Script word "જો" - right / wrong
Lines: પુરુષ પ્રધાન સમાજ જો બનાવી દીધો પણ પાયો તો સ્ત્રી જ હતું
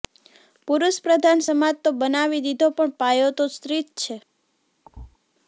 wrong